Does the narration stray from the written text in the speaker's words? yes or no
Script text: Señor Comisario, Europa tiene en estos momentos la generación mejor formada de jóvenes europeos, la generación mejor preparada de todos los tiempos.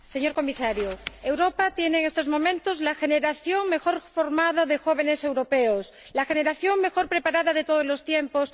no